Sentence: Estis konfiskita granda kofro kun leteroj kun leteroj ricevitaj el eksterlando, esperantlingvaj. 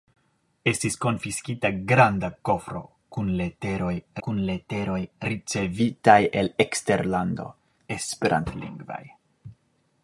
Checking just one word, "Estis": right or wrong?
right